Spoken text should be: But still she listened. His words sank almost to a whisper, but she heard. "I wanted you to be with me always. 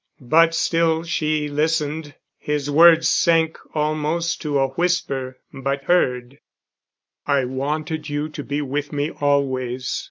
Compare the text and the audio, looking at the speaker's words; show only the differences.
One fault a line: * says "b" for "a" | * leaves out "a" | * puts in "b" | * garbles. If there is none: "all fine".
* leaves out "she"